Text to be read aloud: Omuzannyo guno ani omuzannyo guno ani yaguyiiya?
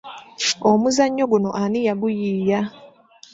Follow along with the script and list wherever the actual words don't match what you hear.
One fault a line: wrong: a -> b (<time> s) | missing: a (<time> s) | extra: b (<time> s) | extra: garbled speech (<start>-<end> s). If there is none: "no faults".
missing: omuzannyo guno ani (1.8 s)